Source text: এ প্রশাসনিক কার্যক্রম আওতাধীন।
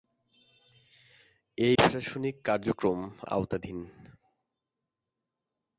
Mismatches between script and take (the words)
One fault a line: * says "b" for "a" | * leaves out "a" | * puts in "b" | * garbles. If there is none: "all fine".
all fine